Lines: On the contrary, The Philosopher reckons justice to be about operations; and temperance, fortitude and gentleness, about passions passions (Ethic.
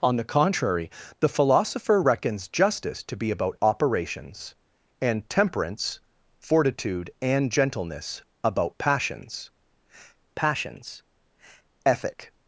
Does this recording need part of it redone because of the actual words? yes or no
no